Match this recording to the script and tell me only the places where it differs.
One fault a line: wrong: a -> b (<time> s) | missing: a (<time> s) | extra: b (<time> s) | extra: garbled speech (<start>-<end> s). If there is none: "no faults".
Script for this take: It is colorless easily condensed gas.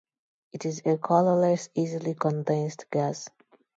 extra: a (0.8 s)